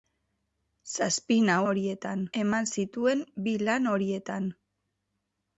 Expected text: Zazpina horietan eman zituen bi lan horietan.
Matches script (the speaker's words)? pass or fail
pass